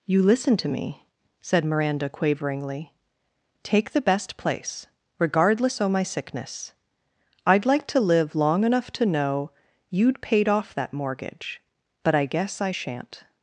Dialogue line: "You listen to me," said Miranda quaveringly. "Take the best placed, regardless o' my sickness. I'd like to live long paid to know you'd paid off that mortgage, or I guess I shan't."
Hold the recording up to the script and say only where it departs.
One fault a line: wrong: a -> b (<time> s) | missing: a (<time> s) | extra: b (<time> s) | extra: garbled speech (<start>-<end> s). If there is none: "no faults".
wrong: placed -> place (4.4 s)
wrong: paid -> enough (8.6 s)
wrong: or -> but (12.0 s)